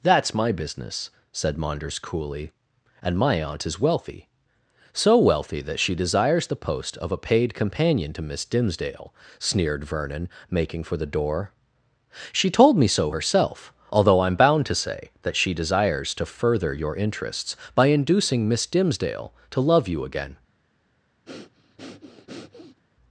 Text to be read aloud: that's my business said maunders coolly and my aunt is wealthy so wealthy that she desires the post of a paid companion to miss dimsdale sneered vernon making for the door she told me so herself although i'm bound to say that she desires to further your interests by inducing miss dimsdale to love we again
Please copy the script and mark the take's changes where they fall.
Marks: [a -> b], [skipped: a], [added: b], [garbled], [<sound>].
that's my business said maunders coolly and my aunt is wealthy so wealthy that she desires the post of a paid companion to miss dimsdale sneered vernon making for the door she told me so herself although i'm bound to say that she desires to further your interests by inducing miss dimsdale to love [we -> you] again [breath]